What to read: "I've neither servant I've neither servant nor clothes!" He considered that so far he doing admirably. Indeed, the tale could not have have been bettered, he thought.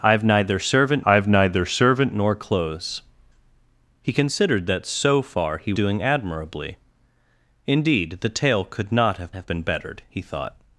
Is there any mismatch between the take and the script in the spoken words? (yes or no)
no